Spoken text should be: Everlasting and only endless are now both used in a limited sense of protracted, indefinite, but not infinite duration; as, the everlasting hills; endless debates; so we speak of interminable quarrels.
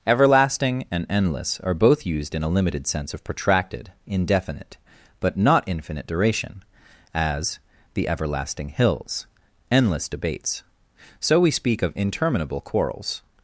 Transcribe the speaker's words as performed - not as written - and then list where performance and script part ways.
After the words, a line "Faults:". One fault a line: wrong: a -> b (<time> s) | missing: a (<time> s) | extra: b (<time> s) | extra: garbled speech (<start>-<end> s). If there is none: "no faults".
Everlasting and endless are both used in a limited sense of protracted, indefinite, but not infinite duration; as, the everlasting hills; endless debates; so we speak of interminable quarrels.
Faults:
missing: only (1.1 s)
missing: now (1.8 s)